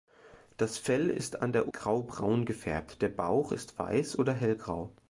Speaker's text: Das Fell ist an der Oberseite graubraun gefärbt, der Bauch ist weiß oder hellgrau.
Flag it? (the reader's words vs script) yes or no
yes